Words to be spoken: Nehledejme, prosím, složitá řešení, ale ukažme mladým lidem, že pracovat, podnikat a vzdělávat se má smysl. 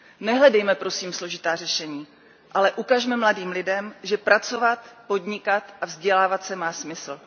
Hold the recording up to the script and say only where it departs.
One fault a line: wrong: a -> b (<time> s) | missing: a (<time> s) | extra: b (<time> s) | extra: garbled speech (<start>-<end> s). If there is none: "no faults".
no faults